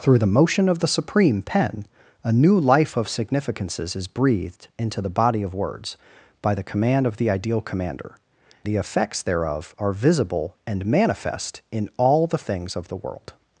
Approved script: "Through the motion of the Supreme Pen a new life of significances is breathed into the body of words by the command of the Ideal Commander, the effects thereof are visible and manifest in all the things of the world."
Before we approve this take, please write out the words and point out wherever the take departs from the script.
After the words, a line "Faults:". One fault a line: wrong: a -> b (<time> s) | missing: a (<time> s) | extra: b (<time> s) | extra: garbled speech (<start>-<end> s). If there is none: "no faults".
"Through the motion of the Supreme Pen a new life of significances is breathed into the body of words by the command of the Ideal Commander, the effects thereof are visible and manifest in all the things of the world."
Faults:
no faults